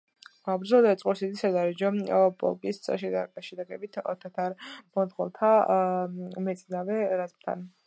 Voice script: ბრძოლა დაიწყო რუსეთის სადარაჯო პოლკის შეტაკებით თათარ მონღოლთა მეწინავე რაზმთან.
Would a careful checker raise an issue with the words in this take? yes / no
no